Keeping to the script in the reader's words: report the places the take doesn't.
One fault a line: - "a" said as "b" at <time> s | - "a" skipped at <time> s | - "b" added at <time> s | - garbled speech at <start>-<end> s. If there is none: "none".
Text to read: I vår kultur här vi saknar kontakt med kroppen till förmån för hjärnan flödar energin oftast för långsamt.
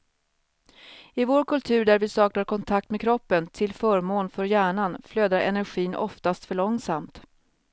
- "här" said as "där" at 1.9 s